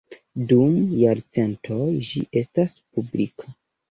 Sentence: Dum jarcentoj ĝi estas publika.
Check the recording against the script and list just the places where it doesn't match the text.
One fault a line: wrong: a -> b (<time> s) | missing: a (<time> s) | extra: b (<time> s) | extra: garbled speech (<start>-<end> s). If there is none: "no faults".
no faults